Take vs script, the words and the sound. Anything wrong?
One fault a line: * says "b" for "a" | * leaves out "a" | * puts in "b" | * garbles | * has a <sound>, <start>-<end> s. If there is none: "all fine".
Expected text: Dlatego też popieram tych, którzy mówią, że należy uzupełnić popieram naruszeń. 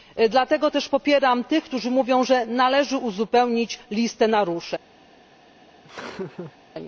* says "listę" for "popieram"
* has a laugh, 5.8-6.6 s